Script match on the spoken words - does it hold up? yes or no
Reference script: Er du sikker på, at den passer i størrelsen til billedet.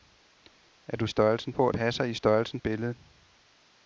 no